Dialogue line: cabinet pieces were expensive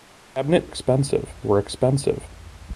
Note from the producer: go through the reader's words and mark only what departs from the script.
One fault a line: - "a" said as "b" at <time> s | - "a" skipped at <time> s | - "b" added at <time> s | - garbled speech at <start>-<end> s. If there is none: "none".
- "pieces" said as "expensive" at 0.6 s